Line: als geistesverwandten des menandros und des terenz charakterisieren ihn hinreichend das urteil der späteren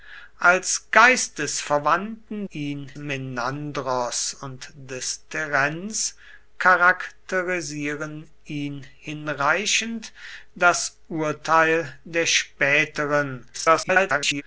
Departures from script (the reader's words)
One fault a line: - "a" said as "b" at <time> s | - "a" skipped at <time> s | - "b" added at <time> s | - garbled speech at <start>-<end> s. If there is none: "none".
- "des" said as "ihn" at 2.5 s
- garbled speech at 13.5-14.4 s